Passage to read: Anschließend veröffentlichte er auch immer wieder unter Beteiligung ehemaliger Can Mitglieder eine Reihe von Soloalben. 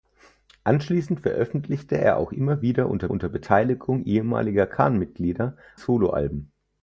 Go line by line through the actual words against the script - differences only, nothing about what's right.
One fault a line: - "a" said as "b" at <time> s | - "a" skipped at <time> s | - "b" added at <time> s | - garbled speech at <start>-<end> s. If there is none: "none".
- "unter" added at 3.1 s
- "eine Reihe von" skipped at 5.6 s